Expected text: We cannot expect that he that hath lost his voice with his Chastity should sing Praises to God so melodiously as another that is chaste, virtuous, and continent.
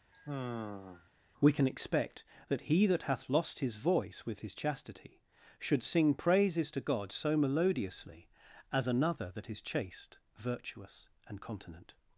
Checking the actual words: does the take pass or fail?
fail